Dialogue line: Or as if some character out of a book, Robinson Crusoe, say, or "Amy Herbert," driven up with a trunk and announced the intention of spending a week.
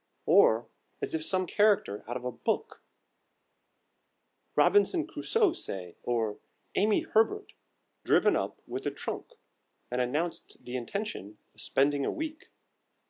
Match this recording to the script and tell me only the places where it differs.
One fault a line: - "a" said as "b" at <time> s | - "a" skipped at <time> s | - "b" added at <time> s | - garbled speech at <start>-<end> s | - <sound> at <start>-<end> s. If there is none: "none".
none